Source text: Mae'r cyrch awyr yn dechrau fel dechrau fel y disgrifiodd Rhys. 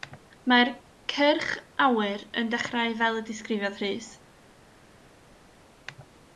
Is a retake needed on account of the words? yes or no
yes